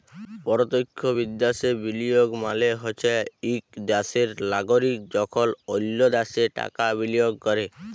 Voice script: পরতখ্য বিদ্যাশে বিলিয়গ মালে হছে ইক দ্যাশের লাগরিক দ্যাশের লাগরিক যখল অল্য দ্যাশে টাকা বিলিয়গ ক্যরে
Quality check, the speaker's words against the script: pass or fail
fail